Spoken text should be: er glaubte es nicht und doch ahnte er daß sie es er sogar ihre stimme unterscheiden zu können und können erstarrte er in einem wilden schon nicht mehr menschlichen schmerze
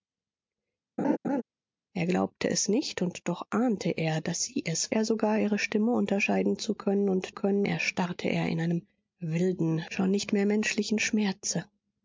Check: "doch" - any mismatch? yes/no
no